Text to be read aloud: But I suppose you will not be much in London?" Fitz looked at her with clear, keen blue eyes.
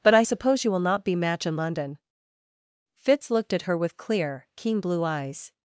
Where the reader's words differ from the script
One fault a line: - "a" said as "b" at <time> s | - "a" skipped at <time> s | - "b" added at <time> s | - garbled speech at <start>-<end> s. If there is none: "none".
- "much" said as "match" at 1.2 s